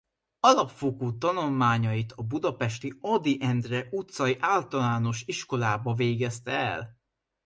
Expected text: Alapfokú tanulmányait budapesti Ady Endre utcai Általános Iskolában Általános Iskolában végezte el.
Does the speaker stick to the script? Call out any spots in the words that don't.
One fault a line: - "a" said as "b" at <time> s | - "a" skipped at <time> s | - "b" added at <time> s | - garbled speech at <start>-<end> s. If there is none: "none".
- "a" added at 2.1 s
- "Általános Iskolában" skipped at 5.9 s